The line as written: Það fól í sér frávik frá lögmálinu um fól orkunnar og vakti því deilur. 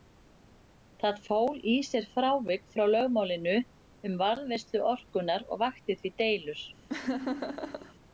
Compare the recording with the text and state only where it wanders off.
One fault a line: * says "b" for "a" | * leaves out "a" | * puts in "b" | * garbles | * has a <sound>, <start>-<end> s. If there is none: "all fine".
* says "varðveislu" for "fól"
* has a laugh, 6.9-7.9 s